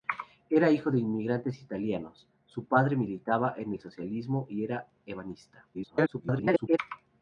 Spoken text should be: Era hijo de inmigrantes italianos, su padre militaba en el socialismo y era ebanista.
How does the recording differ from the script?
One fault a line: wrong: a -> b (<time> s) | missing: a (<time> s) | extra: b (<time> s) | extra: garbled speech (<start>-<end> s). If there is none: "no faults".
extra: garbled speech (5.7-6.8 s)